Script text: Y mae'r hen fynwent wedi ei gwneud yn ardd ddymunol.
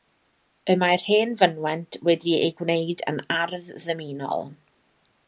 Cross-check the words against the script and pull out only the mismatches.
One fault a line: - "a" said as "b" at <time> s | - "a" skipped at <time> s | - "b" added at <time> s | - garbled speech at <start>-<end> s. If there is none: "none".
none